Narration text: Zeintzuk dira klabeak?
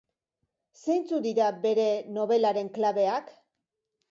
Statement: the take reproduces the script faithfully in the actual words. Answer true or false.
false